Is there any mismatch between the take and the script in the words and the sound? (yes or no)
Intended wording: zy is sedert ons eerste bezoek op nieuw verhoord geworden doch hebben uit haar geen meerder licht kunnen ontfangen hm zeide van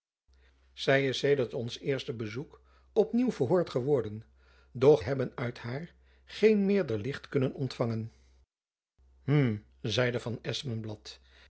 no